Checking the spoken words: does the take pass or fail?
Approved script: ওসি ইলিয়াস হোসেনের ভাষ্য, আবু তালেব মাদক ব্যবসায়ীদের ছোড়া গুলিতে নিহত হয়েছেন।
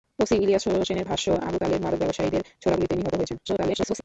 fail